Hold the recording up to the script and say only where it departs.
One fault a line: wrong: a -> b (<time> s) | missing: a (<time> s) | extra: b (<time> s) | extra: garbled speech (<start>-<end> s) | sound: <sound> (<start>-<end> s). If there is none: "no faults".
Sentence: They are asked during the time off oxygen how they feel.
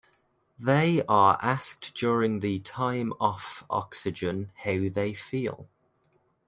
no faults